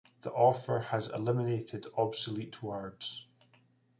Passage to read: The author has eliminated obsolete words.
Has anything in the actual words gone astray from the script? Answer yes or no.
no